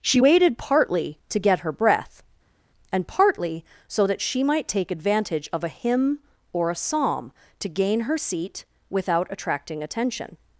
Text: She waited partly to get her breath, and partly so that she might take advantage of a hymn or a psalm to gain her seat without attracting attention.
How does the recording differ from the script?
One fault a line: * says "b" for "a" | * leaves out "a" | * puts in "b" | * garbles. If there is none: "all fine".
all fine